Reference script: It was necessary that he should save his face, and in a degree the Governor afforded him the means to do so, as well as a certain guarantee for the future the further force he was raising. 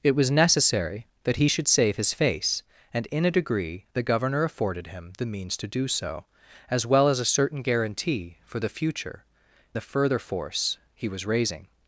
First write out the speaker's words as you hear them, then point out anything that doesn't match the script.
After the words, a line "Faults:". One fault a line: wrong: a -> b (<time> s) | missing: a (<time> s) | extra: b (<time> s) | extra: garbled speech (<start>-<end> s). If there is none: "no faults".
It was necessary that he should save his face, and in a degree the Governor afforded him the means to do so, as well as a certain guarantee for the future the further force he was raising.
Faults:
no faults